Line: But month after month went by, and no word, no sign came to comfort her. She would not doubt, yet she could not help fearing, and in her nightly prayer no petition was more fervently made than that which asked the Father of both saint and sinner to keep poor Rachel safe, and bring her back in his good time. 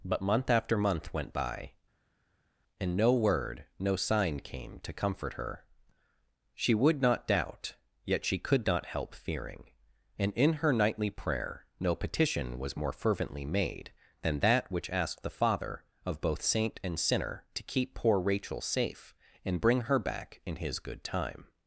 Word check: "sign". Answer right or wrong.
right